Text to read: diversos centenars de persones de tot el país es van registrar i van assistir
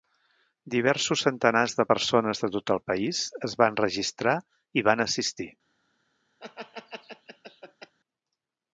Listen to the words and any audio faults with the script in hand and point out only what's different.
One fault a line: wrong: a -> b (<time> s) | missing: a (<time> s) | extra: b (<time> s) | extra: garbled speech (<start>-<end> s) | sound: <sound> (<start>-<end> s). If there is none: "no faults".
sound: laugh (6.4-7.9 s)